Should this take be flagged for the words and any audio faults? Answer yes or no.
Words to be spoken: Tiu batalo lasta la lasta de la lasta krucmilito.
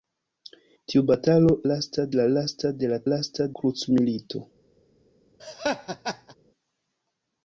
yes